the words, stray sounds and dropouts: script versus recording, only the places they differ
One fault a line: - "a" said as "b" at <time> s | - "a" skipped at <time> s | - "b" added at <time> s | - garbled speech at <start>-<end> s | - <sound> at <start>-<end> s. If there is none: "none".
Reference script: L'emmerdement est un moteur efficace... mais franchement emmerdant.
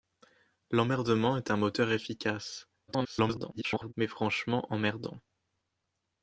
- garbled speech at 2.9-3.9 s